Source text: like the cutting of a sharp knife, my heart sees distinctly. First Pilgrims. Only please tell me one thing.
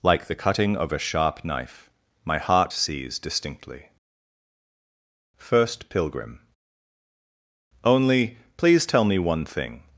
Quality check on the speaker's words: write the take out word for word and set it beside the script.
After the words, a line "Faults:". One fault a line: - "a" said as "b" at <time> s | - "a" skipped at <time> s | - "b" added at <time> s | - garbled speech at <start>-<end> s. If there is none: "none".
like the cutting of a sharp knife, my heart sees distinctly. First Pilgrim. Only please tell me one thing.
Faults:
- "Pilgrims" said as "Pilgrim" at 5.9 s